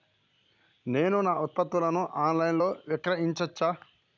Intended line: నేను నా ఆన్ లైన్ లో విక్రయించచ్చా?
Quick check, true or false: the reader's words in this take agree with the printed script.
false